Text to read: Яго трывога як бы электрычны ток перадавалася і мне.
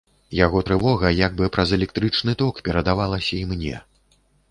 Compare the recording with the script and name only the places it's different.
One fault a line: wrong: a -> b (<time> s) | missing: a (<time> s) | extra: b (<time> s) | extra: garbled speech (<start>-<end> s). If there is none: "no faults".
extra: праз (1.6 s)